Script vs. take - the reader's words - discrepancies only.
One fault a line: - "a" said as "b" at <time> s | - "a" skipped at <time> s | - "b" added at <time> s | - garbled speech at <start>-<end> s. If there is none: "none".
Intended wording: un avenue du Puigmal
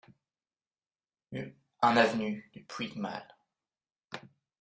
none